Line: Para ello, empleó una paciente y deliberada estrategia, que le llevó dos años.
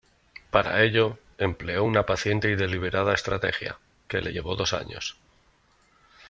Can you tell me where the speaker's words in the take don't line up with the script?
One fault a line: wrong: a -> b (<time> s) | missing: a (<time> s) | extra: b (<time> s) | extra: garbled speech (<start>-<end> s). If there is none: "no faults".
no faults